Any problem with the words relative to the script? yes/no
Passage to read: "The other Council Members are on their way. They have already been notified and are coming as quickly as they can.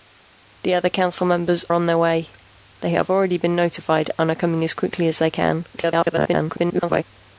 yes